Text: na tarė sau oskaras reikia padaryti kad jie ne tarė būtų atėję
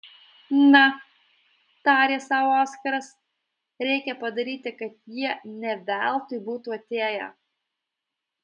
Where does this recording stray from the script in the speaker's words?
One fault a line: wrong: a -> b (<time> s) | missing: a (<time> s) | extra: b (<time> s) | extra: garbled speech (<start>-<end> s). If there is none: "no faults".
wrong: tarė -> veltui (5.9 s)